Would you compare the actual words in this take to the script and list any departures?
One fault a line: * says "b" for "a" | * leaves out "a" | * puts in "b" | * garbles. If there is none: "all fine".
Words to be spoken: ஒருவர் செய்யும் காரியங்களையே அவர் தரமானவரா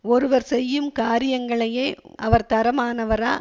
all fine